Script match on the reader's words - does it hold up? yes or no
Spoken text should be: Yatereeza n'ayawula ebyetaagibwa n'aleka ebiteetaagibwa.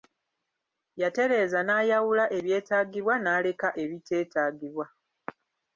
yes